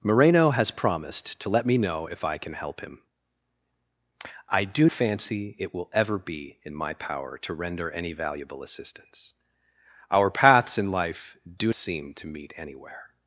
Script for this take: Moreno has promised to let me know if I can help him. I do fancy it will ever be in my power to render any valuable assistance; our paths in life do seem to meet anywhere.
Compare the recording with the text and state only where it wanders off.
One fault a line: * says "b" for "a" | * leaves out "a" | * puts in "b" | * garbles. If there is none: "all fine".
all fine